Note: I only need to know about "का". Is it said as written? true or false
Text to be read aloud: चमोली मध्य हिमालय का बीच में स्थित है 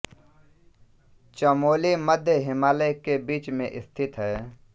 false